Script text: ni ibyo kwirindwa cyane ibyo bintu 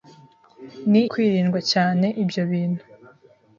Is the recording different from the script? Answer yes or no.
yes